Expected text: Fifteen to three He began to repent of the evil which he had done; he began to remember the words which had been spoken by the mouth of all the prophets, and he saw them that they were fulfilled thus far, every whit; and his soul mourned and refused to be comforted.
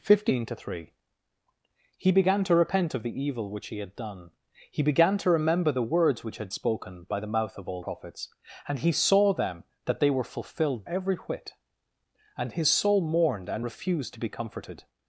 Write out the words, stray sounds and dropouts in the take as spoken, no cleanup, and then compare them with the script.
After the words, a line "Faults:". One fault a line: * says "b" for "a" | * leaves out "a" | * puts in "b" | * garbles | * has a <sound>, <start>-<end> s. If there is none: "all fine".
Fifteen to three He began to repent of the evil which he had done; he began to remember the words which had spoken by the mouth of all prophets, and he saw them that they were fulfilled every whit; and his soul mourned and refused to be comforted.
Faults:
* leaves out "been"
* leaves out "the"
* leaves out "thus far"